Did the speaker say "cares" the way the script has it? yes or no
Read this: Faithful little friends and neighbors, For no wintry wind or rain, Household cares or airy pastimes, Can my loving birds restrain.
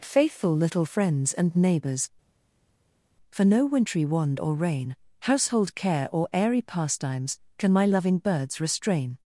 no